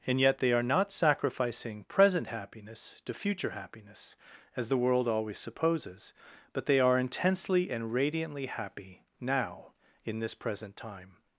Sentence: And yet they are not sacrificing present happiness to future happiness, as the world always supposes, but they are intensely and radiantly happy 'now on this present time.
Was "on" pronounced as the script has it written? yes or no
no